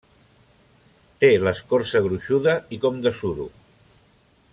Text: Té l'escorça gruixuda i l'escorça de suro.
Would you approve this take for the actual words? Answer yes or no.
no